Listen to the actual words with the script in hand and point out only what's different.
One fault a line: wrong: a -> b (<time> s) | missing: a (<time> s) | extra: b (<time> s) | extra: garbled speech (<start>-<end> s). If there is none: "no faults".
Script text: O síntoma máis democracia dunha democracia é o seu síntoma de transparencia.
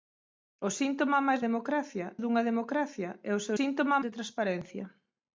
no faults